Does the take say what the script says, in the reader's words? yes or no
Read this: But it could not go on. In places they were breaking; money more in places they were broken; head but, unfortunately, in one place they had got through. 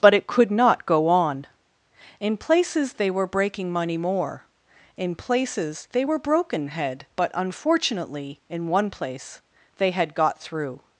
yes